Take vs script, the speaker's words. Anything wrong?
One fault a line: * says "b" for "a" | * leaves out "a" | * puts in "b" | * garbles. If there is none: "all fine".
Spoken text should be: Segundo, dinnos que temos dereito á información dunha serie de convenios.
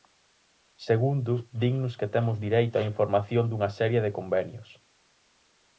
all fine